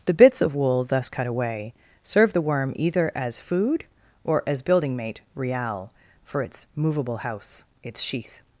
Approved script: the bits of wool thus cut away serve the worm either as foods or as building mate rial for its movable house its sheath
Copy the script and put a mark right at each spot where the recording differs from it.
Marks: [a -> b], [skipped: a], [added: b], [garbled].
the bits of wool thus cut away serve the worm either as [foods -> food] or as building mate rial for its movable house its sheath